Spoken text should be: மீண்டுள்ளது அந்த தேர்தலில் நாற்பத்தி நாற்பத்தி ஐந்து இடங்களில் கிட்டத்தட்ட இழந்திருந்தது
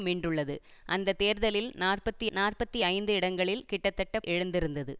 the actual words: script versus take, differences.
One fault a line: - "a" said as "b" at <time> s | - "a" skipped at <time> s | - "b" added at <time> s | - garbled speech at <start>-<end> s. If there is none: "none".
none